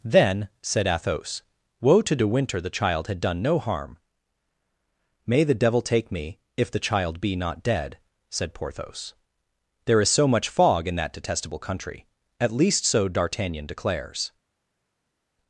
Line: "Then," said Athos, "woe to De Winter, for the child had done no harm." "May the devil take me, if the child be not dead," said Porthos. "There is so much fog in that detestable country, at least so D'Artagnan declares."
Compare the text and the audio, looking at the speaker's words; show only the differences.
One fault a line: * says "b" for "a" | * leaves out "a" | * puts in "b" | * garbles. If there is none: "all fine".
* leaves out "for"